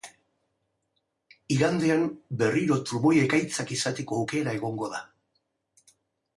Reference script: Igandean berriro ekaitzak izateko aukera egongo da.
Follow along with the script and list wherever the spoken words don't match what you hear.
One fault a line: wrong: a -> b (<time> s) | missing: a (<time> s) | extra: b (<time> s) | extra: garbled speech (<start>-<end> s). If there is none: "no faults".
extra: trumoi (2.9 s)